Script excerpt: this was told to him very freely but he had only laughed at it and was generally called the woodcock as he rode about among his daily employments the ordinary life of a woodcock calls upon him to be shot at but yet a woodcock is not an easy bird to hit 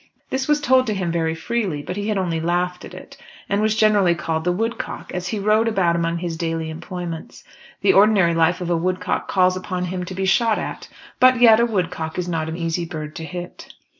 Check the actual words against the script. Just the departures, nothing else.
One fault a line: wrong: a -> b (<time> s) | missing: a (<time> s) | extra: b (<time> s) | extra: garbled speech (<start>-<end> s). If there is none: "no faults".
no faults